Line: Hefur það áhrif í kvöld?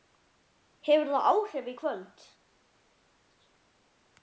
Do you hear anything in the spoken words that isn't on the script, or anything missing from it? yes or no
no